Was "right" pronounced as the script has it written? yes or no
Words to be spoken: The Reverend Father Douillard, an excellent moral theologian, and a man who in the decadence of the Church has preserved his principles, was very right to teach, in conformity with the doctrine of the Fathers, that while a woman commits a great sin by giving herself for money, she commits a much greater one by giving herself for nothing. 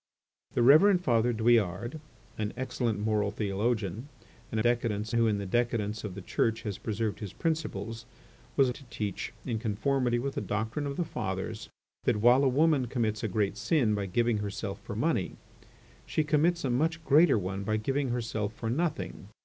no